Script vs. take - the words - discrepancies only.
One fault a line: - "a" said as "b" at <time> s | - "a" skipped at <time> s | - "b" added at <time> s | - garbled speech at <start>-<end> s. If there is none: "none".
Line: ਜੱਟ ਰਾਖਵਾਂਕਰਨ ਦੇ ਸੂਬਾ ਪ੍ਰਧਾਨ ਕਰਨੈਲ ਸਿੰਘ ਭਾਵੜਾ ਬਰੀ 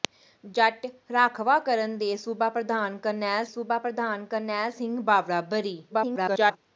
- "ਸੂਬਾ ਪ੍ਰਧਾਨ ਕਰਨੈਲ" added at 3.5 s
- garbled speech at 5.9-6.6 s